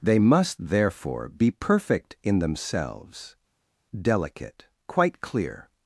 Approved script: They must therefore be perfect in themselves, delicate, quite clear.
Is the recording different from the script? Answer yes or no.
no